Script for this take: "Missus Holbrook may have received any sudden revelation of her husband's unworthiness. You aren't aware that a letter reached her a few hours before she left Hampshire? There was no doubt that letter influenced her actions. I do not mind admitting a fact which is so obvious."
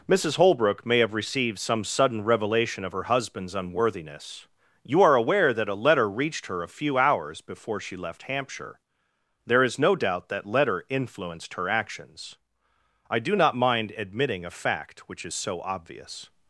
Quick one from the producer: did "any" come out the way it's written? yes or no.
no